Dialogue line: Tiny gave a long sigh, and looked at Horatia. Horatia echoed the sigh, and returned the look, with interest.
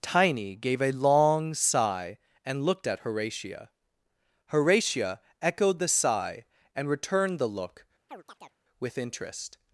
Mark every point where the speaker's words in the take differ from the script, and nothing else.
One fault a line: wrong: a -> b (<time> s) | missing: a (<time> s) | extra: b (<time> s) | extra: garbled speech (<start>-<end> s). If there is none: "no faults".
no faults